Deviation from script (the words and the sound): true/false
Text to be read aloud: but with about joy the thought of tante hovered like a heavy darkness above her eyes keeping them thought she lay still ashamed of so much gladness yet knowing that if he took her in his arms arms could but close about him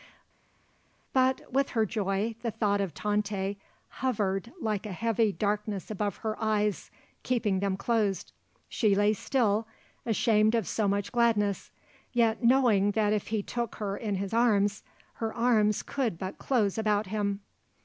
true